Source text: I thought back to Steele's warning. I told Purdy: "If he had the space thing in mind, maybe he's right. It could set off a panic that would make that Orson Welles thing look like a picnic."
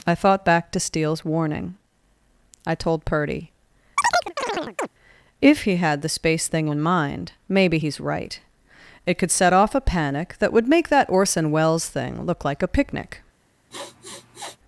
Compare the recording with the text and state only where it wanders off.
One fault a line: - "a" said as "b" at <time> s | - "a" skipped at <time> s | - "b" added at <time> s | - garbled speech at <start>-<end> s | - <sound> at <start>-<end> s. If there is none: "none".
- chirp at 4.0-4.9 s
- sniff at 13.7-14.6 s